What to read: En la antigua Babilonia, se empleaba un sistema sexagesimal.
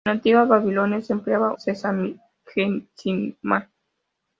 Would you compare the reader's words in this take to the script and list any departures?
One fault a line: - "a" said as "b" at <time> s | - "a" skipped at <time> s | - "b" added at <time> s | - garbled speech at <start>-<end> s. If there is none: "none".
- "un sistema" skipped at 1.5 s